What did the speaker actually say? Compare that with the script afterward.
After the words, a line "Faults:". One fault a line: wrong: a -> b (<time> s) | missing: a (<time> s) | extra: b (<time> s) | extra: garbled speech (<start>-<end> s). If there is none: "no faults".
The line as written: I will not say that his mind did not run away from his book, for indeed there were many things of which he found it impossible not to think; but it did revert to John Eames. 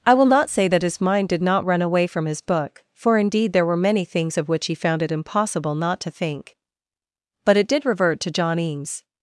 I will not say that his mind did not run away from his book, for indeed there were many things of which he found it impossible not to think; but it did revert to John Eames.
Faults:
no faults